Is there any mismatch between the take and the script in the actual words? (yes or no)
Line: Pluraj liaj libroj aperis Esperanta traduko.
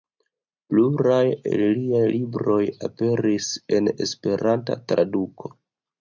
yes